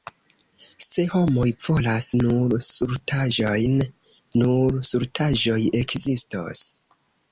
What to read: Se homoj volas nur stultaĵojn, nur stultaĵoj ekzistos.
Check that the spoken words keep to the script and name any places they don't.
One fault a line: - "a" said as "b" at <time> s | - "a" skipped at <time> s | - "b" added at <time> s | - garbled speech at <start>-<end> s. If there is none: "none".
none